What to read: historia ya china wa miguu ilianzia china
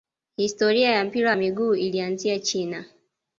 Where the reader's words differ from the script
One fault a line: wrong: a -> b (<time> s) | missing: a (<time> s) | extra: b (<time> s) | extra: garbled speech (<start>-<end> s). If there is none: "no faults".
wrong: china -> mpira (1.1 s)